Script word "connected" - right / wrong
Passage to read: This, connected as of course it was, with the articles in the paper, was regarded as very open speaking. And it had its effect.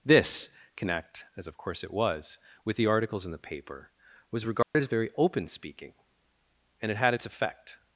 wrong